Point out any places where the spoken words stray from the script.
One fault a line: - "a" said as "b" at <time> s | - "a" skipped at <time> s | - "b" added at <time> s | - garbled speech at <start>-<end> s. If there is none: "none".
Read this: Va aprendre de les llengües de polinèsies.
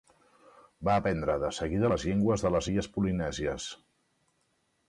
- "seguida" added at 1.6 s
- "les illes" added at 2.6 s